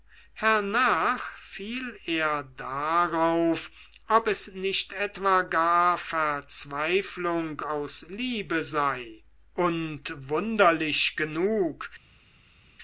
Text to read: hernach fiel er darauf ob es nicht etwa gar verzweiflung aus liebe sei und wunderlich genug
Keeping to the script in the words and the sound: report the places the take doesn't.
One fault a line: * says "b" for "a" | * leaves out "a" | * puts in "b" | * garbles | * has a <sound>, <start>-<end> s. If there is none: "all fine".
all fine